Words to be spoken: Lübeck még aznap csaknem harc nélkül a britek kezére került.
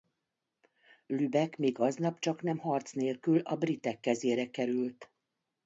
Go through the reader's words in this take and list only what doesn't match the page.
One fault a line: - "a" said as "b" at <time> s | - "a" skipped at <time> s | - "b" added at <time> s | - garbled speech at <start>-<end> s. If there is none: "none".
none